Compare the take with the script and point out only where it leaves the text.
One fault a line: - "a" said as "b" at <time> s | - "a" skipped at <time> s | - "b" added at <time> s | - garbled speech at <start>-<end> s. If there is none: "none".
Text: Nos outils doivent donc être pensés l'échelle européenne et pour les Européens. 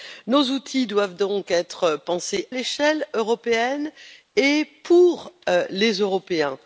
none